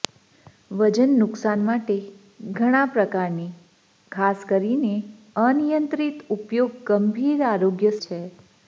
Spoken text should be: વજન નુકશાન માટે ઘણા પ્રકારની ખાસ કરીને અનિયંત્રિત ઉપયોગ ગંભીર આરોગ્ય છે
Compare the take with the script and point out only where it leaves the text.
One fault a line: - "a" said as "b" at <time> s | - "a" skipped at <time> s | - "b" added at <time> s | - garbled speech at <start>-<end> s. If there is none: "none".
none